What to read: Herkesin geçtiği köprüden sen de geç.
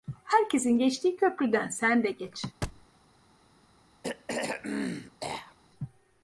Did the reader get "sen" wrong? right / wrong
right